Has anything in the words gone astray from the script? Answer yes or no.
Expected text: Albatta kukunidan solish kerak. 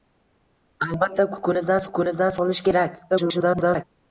yes